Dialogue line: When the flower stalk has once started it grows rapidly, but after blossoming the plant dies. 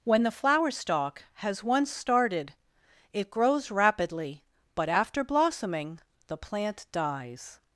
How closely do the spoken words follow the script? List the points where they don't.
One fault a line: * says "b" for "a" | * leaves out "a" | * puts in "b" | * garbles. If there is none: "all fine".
all fine